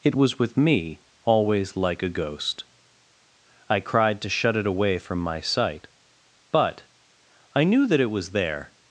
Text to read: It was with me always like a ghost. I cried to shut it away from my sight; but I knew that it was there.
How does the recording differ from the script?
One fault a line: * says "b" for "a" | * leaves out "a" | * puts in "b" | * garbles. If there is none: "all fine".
all fine